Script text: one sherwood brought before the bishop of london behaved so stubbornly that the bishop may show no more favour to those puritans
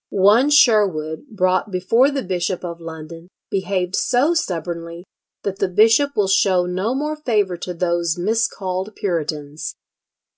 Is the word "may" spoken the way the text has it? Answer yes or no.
no